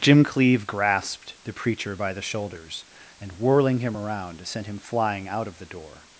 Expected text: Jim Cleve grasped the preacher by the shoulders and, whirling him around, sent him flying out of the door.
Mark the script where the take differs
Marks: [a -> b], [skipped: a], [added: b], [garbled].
Jim Cleve grasped the preacher by the shoulders and, whirling him around, sent him flying out of the door.